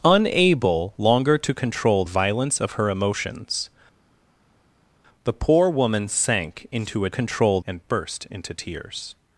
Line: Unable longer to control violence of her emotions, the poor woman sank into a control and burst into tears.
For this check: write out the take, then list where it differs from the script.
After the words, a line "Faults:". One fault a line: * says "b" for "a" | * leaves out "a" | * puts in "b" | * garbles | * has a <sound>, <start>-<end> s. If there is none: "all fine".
Unable longer to control violence of her emotions, the poor woman sank into a control and burst into tears.
Faults:
all fine